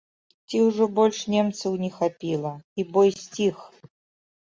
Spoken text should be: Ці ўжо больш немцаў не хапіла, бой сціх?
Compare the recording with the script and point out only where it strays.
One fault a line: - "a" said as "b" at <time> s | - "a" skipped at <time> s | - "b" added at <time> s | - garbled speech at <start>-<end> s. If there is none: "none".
- "і" added at 2.8 s